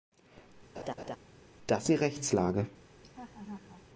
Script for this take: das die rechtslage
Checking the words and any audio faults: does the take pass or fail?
fail